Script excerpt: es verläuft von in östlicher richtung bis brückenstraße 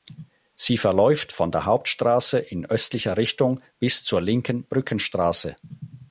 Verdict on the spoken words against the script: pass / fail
fail